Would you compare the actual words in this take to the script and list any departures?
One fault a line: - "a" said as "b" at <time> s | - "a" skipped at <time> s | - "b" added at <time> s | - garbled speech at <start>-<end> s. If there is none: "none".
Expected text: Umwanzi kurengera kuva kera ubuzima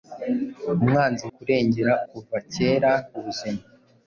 none